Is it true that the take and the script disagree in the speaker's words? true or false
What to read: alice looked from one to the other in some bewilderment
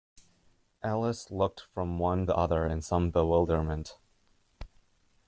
true